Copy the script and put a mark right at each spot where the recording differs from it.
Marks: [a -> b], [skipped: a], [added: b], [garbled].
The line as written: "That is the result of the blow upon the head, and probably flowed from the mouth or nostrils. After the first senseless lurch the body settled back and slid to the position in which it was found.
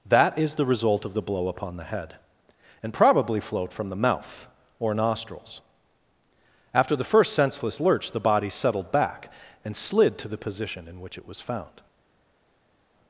"That is the result of the blow upon the head, and probably flowed from the mouth or nostrils. After the first senseless lurch the body settled back and slid to the position in which it was found.